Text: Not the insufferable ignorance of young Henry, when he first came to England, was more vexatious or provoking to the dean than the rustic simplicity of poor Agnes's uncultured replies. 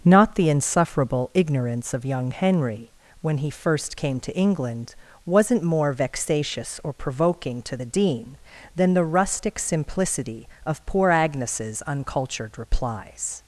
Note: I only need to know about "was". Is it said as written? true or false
false